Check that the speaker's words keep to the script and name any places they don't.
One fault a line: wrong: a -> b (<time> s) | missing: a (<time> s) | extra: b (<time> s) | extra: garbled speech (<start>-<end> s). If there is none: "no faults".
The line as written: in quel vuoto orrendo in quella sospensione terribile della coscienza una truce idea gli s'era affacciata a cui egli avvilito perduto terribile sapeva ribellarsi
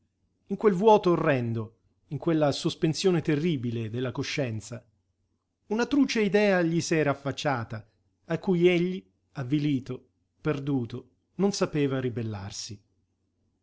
wrong: terribile -> non (11.3 s)